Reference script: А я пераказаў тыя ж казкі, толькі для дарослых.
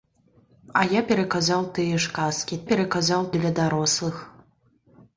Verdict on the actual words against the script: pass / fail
fail